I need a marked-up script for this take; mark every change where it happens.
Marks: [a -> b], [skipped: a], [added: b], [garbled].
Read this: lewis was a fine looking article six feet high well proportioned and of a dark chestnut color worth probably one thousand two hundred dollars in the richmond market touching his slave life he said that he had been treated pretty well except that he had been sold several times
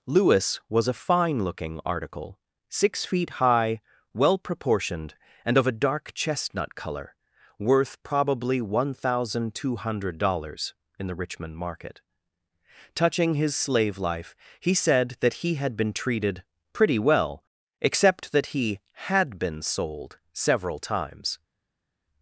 lewis was a fine looking article six feet high well proportioned and of a dark chestnut color worth probably one thousand two hundred dollars in the richmond market touching his slave life he said that he had been treated pretty well except that he had been sold several times